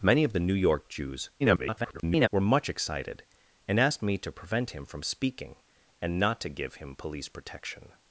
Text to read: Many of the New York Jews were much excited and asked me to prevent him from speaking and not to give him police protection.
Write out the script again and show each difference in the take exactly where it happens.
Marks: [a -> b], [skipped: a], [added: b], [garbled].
Many of the New York Jews [garbled] were much excited and asked me to prevent him from speaking and not to give him police protection.